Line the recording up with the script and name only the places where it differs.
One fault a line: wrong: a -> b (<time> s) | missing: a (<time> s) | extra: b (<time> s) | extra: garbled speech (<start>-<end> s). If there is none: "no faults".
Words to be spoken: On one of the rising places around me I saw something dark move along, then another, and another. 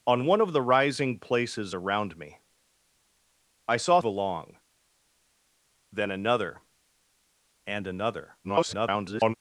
missing: something dark move (4.0 s)
extra: garbled speech (8.4-9.3 s)